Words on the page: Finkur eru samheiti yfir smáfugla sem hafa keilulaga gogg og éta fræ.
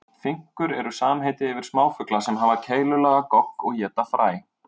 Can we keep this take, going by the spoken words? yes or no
yes